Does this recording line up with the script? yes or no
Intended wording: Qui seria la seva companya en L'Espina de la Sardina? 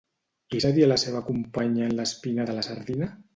yes